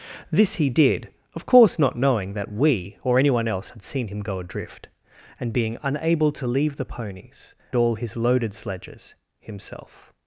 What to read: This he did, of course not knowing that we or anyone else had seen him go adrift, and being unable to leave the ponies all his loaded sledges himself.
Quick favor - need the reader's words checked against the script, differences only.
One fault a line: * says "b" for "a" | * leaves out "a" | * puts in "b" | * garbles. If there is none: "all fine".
all fine